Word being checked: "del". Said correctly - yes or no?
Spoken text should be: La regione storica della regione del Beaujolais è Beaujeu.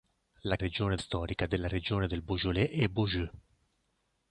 yes